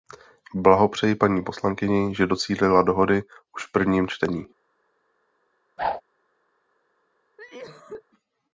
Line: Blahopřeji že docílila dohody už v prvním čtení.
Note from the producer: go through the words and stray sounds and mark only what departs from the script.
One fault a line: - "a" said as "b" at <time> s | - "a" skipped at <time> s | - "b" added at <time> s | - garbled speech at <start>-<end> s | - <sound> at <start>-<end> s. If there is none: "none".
- "paní poslankyni" added at 1.1 s
- whoosh at 5.8-6.0 s
- cough at 7.4-8.0 s